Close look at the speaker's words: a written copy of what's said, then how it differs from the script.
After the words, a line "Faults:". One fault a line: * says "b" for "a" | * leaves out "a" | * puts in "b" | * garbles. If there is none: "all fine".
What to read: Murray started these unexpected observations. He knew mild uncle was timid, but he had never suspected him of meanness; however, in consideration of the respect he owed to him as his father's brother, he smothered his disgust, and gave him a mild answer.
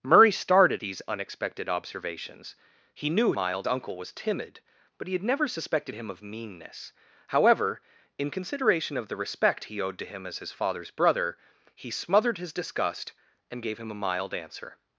Murray started these unexpected observations. He knew mild uncle was timid, but he had never suspected him of meanness; however, in consideration of the respect he owed to him as his father's brother, he smothered his disgust, and gave him a mild answer.
Faults:
all fine